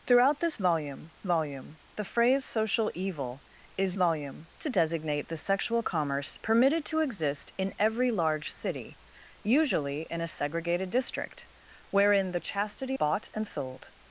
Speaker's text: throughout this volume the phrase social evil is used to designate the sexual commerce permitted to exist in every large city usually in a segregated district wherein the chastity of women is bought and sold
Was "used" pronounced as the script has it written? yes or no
no